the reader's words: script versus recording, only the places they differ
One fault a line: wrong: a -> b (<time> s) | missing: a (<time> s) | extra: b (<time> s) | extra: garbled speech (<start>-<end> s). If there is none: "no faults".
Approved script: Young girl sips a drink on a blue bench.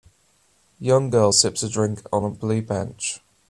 no faults